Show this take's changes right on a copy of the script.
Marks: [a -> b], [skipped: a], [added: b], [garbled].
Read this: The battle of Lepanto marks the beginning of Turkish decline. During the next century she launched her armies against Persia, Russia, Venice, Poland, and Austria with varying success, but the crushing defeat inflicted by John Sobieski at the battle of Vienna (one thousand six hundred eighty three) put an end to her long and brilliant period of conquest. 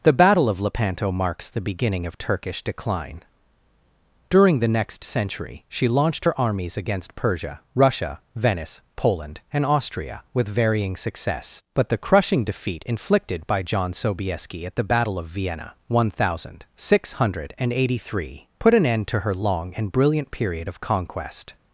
The battle of Lepanto marks the beginning of Turkish decline. During the next century she launched her armies against Persia, Russia, Venice, Poland, and Austria with varying success, but the crushing defeat inflicted by John Sobieski at the battle of Vienna (one thousand six hundred eighty three) put an end to her long and brilliant period of conquest.